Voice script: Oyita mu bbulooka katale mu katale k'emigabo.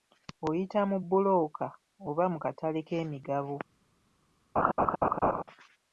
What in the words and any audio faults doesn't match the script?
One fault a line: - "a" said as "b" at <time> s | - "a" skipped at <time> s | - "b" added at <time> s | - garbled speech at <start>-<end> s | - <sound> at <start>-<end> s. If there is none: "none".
- "katale" said as "oba" at 2.1 s
- laugh at 4.6-5.4 s